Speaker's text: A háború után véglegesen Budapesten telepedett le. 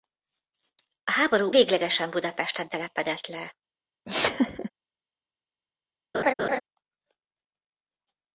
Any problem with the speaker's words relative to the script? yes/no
yes